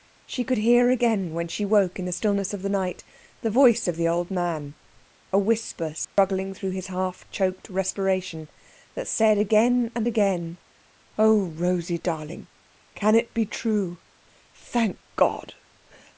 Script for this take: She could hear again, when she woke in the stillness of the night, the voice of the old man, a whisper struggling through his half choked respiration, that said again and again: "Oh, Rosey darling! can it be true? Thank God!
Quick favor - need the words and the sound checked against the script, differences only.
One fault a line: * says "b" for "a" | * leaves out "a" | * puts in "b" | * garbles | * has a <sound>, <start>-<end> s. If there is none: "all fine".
* has a dropout, 6.0-6.2 s